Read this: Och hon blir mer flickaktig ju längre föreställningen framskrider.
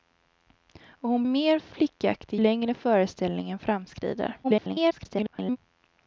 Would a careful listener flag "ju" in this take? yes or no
yes